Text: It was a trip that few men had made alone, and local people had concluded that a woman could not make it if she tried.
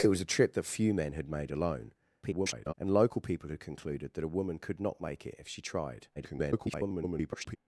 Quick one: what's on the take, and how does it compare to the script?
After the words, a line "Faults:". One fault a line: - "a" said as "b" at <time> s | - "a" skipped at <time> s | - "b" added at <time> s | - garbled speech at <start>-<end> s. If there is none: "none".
It was a trip that few men had made alone, [garbled] and local people had concluded that a woman could not make it if she tried. [garbled]
Faults:
- garbled speech at 2.2-2.7 s
- garbled speech at 6.2-7.6 s